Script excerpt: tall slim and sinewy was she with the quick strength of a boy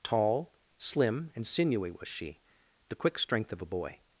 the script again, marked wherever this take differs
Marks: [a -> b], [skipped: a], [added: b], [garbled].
tall slim and sinewy was she [skipped: with] the quick strength of a boy